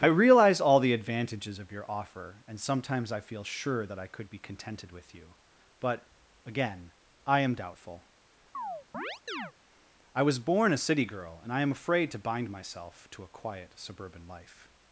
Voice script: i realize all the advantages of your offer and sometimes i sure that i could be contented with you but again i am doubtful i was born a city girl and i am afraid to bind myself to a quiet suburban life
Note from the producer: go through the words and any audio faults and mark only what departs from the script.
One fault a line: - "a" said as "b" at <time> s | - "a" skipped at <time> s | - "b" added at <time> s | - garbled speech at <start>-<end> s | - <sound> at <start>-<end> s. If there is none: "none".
- "feel" added at 3.2 s
- chirp at 8.5-9.5 s